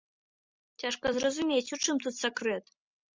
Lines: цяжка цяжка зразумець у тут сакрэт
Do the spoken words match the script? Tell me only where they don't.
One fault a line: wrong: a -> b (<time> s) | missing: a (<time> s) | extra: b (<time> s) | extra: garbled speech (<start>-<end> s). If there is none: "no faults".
missing: цяжка (1.1 s)
extra: чым (1.8 s)